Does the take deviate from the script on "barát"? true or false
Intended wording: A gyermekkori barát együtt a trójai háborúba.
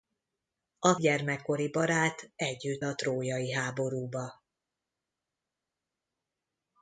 false